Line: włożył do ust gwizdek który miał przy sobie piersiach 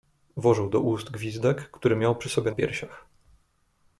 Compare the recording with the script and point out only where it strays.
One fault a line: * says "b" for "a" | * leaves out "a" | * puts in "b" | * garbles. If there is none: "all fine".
all fine